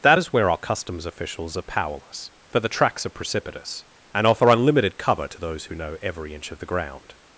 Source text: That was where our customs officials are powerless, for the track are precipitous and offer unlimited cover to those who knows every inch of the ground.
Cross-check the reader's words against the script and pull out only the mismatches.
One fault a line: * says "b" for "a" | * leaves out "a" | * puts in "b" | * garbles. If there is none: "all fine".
* says "is" for "was"
* says "tracks" for "track"
* says "know" for "knows"